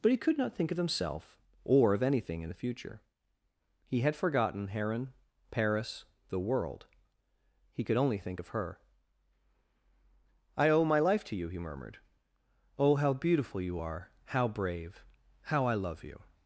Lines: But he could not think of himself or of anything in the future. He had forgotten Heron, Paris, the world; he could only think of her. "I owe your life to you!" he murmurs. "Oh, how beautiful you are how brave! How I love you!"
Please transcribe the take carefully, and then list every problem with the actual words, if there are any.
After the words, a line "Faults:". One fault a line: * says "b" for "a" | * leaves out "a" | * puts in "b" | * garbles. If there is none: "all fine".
But he could not think of himself or of anything in the future. He had forgotten Heron, Paris, the world; he could only think of her. "I owe my life to you!" he murmured. "Oh, how beautiful you are how brave! How I love you!"
Faults:
* says "my" for "your"
* says "murmured" for "murmurs"